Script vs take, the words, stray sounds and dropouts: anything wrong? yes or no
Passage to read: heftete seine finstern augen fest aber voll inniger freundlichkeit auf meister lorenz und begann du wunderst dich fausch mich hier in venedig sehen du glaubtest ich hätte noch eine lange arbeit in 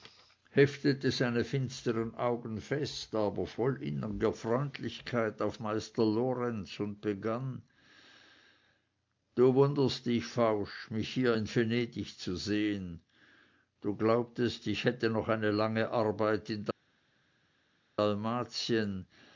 yes